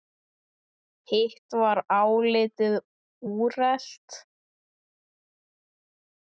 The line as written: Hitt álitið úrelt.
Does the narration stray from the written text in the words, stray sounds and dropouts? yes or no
yes